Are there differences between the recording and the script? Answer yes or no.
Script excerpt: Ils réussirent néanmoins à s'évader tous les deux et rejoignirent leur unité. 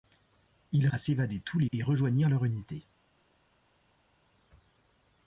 yes